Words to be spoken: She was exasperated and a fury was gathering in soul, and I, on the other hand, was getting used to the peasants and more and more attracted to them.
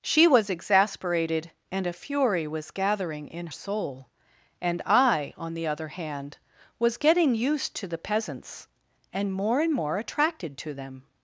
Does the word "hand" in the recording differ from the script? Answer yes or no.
no